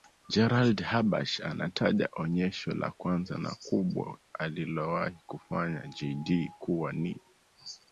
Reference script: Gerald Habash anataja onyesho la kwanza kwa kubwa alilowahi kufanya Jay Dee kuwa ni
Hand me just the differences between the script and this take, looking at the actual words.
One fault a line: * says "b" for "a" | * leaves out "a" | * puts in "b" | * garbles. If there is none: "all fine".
* says "na" for "kwa"